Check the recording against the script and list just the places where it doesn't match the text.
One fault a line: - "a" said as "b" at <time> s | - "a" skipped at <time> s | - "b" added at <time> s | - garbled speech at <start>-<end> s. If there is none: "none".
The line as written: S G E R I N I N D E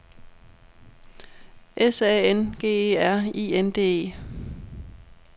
- "A N" added at 2.0 s
- "I N" skipped at 3.7 s